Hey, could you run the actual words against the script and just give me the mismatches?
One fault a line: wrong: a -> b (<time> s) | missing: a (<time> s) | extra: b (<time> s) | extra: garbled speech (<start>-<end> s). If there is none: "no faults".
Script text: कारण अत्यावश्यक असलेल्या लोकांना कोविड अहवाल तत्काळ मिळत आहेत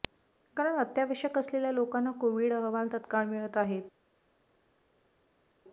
no faults